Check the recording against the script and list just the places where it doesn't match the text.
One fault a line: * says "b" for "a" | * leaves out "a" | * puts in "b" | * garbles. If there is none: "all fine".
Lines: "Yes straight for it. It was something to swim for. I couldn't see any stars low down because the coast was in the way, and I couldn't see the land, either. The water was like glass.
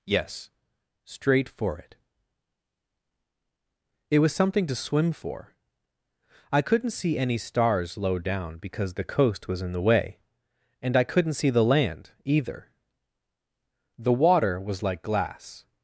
all fine